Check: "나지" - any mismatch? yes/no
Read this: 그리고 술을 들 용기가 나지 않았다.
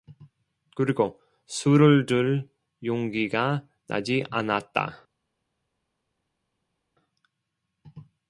no